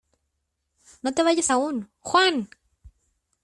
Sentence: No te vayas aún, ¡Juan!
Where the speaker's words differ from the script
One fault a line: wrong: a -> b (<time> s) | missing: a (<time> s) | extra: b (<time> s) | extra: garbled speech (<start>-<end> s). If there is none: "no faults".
no faults